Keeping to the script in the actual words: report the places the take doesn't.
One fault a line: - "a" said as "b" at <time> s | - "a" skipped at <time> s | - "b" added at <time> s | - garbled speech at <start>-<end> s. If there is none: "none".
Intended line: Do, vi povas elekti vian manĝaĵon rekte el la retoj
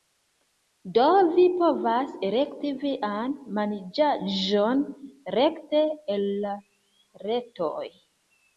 none